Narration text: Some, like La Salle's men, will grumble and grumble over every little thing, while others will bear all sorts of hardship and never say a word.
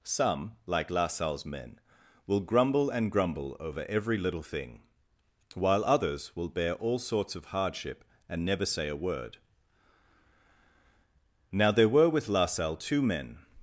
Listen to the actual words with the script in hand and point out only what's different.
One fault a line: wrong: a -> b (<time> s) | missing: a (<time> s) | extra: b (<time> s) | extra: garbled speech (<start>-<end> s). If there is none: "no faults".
extra: Now there were with La Salle two men (11.5 s)